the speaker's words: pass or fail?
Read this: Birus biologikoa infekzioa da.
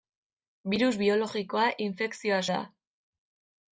pass